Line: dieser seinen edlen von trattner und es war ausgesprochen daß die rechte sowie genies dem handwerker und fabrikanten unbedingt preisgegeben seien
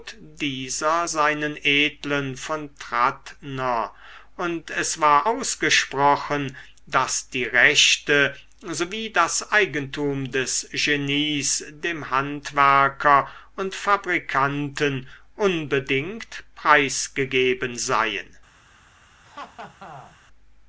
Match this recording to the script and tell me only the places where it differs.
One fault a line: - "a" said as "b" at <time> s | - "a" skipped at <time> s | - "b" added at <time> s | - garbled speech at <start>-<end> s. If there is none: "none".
- "das eigentum des" added at 9.1 s